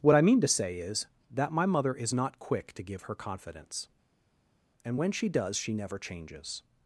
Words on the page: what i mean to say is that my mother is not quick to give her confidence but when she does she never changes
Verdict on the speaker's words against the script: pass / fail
fail